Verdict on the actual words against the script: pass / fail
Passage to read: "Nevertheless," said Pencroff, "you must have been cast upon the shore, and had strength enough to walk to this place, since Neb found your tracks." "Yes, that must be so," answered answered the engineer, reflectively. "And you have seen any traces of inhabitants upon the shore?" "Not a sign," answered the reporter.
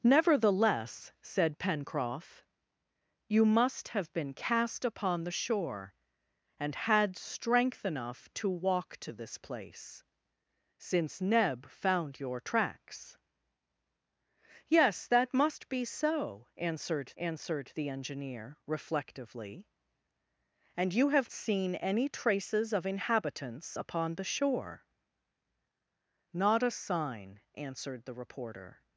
pass